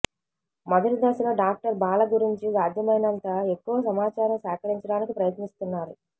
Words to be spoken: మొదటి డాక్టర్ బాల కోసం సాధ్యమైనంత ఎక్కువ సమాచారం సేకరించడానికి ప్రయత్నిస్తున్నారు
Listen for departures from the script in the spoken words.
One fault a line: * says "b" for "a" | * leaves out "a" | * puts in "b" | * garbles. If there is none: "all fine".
* puts in "దశలో"
* says "గురించి" for "కోసం"